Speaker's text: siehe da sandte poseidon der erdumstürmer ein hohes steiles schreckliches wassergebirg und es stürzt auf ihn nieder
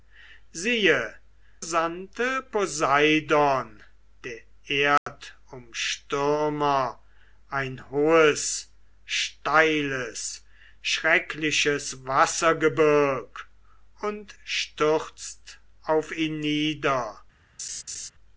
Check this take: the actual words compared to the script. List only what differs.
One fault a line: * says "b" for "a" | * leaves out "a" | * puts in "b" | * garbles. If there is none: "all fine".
* leaves out "da"
* leaves out "es"